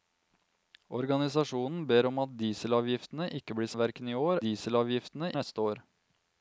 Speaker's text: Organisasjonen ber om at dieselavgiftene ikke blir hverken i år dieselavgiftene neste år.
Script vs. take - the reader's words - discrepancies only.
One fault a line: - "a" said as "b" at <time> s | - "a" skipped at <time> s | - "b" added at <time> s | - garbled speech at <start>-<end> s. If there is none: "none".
none